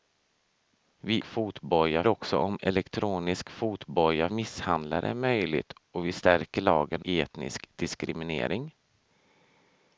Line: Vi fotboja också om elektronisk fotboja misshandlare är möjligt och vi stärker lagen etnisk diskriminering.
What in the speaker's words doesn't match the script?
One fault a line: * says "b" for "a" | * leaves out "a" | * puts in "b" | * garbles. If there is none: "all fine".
all fine